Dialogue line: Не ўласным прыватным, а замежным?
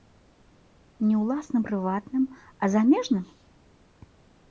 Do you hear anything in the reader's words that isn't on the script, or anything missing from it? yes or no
no